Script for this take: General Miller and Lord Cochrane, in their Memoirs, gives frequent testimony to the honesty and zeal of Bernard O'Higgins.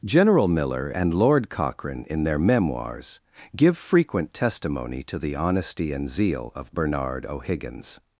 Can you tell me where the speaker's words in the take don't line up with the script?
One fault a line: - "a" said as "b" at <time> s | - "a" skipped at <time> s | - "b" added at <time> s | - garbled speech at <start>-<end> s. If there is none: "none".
- "gives" said as "give" at 3.5 s